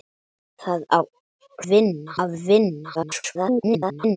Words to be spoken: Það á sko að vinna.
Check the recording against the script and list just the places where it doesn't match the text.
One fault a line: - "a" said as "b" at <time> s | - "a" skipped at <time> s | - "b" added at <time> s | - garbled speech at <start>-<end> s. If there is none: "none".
- "sko" said as "vinna" at 1.7 s
- garbled speech at 2.9-4.2 s